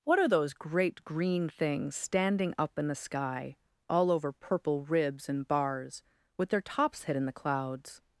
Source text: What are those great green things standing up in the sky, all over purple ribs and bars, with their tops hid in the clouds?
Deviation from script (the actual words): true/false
false